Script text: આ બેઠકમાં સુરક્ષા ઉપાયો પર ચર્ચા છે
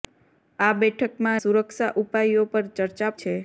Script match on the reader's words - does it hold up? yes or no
yes